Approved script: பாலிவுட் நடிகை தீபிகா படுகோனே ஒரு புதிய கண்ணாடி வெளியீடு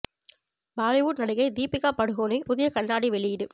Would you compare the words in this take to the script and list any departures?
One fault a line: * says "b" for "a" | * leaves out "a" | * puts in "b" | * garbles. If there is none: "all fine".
* leaves out "ஒரு"